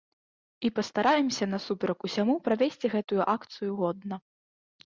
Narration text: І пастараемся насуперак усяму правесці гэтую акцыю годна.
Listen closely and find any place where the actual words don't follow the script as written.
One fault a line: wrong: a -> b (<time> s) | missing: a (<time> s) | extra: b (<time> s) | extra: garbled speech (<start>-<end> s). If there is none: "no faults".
no faults